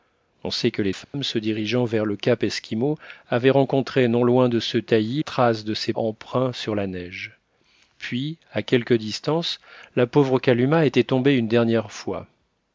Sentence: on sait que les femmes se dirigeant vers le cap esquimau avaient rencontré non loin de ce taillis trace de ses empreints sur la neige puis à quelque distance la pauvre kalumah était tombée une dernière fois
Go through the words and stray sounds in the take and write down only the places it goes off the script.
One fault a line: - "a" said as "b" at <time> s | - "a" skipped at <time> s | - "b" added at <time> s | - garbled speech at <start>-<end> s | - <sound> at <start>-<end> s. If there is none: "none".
- dropout at 1.0-1.1 s